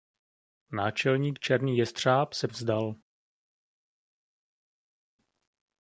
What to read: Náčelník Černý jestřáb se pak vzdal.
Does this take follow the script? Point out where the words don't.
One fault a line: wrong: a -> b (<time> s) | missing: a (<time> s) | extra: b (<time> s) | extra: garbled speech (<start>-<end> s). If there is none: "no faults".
missing: pak (2.5 s)